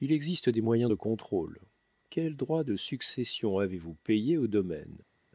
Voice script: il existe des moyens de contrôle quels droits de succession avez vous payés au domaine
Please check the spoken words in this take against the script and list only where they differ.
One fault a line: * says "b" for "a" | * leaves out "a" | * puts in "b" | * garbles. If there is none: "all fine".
all fine